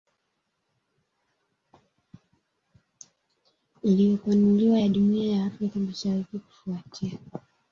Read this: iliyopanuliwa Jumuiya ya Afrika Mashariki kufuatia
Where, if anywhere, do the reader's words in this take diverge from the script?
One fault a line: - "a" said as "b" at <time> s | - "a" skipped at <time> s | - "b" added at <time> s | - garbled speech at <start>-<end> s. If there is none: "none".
- "ya" added at 4.8 s